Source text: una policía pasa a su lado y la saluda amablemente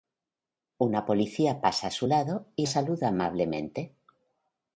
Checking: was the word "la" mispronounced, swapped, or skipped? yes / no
yes